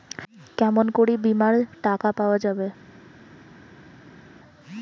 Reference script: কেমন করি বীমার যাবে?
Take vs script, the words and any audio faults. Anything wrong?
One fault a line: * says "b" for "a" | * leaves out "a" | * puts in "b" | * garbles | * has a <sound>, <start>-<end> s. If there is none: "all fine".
* puts in "টাকা পাওয়া"